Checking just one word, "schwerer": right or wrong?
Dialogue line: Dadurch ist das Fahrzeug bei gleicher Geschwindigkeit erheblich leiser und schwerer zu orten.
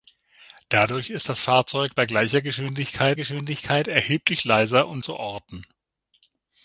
wrong